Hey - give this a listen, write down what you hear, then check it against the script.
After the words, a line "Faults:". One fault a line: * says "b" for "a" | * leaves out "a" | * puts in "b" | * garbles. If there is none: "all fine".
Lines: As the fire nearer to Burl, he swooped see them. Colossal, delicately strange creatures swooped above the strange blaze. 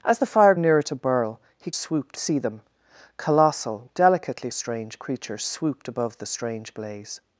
As the fire nearer to Burl, he swooped see them. Colossal, delicately strange creatures swooped above the strange blaze.
Faults:
all fine